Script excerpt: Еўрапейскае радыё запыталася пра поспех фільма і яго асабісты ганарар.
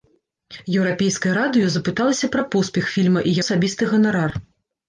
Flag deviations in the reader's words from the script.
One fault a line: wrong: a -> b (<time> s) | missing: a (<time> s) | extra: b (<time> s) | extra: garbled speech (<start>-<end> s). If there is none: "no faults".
missing: яго (3.4 s)